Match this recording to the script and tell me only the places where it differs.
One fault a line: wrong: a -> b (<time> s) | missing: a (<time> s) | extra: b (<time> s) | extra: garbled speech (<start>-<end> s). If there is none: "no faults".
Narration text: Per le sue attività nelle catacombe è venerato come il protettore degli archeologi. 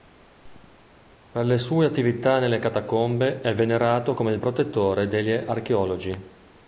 no faults